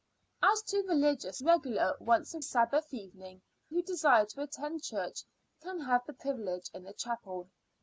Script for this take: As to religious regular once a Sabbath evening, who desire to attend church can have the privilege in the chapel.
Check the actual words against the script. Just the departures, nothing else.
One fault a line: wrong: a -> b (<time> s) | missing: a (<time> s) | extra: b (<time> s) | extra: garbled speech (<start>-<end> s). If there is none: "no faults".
no faults